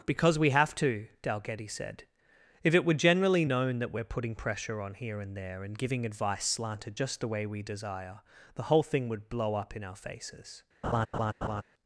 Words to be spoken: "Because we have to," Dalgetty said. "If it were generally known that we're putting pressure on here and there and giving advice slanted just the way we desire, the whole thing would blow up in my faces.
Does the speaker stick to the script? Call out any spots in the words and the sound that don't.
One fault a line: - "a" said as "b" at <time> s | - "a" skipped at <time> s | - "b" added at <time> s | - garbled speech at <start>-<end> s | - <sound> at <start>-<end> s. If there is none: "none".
- "my" said as "our" at 9.8 s
- laugh at 10.8-11.6 s